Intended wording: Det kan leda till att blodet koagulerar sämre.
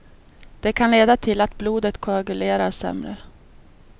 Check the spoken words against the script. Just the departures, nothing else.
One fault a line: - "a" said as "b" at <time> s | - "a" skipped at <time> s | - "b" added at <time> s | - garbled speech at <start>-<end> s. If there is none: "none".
none